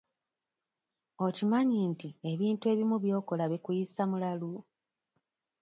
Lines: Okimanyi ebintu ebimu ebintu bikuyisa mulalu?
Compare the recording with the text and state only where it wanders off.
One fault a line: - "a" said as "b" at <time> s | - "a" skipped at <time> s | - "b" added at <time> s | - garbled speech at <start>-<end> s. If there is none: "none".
- "nti" added at 1.9 s
- "ebintu" said as "by'okola" at 3.0 s